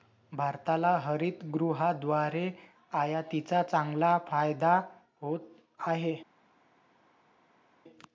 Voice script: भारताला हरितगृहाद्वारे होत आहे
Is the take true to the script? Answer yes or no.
no